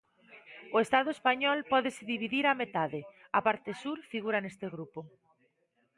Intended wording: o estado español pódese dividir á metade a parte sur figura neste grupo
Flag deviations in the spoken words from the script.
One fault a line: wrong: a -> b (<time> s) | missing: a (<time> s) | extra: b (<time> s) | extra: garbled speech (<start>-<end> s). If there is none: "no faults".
no faults